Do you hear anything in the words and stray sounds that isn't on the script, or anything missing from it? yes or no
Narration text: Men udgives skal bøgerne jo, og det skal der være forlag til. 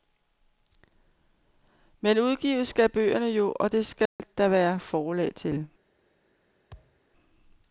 yes